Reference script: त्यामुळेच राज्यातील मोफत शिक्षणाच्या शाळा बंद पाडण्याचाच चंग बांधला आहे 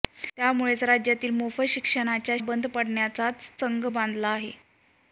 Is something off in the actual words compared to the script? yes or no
yes